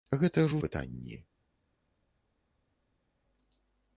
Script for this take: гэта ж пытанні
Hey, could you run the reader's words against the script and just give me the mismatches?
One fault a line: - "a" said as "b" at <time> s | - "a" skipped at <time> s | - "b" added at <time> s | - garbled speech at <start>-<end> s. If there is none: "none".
none